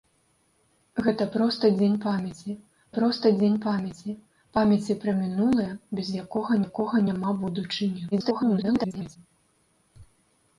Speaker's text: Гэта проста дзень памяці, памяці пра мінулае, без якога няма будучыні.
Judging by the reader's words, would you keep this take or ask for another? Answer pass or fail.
fail